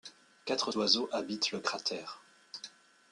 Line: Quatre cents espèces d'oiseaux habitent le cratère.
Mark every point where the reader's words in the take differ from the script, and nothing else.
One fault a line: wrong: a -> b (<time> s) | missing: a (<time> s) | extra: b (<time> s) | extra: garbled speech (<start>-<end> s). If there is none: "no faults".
missing: cents espèces (0.7 s)